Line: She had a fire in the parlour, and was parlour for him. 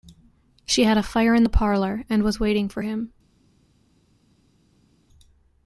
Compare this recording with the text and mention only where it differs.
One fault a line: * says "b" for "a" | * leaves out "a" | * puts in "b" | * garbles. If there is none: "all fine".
* says "waiting" for "parlour"